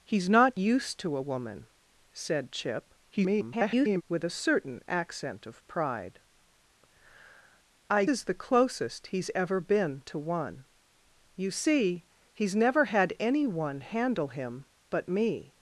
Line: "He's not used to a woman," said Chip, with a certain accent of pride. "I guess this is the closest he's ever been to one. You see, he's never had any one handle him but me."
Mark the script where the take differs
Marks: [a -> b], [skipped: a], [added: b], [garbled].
"He's not used to a woman," said Chip, [garbled] with a certain accent of pride. "I [skipped: guess this] is the closest he's ever been to one. You see, he's never had any one handle him but me."